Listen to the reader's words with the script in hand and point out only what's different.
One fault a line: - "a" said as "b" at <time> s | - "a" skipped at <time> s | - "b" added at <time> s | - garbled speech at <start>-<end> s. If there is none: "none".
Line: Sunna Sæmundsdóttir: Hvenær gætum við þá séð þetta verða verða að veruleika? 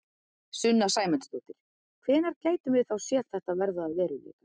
- "verða" skipped at 3.9 s